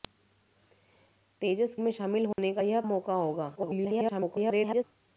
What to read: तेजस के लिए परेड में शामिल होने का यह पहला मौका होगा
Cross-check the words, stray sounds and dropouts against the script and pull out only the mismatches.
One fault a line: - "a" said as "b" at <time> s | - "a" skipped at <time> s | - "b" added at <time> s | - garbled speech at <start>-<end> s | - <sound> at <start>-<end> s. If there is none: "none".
- "के लिए परेड" skipped at 1.8 s
- dropout at 2.3-2.4 s
- "पहला" skipped at 2.8 s
- garbled speech at 3.6-4.8 s